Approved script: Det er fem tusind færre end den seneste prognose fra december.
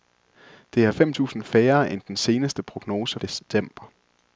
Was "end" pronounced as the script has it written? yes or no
yes